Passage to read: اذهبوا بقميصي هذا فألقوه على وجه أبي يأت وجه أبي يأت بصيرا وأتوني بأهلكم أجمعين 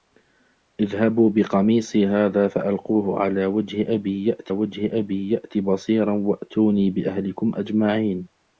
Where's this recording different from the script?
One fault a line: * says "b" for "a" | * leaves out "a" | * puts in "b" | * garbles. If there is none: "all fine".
all fine